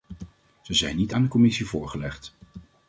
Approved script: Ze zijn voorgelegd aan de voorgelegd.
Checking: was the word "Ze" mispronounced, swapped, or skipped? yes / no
no